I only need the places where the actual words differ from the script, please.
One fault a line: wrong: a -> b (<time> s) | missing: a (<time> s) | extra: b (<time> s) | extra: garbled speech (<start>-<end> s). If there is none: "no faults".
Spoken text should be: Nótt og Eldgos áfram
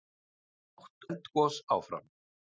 missing: og (1.1 s)